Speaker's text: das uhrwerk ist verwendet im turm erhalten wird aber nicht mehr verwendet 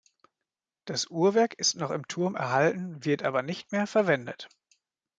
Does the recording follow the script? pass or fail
fail